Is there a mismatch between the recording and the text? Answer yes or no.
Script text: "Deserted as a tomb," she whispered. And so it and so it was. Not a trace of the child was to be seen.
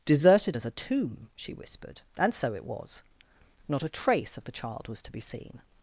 yes